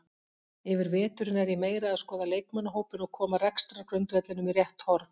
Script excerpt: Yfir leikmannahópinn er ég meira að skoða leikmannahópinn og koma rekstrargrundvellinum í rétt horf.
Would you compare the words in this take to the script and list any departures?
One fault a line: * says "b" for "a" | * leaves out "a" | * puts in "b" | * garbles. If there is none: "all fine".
* says "veturinn" for "leikmannahópinn"